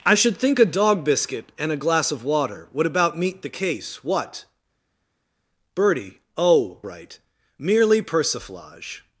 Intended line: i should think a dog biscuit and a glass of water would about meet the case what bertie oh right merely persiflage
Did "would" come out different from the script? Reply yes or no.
no